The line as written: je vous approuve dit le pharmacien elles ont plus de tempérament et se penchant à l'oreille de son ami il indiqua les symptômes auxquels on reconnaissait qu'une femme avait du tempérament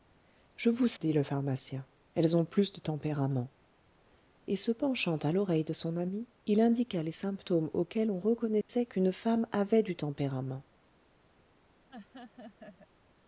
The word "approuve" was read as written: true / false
false